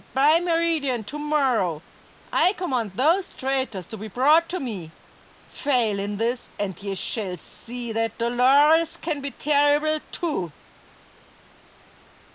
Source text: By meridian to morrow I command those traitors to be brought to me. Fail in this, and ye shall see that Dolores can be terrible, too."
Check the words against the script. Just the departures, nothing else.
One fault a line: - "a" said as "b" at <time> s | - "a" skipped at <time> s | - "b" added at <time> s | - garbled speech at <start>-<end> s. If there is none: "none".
none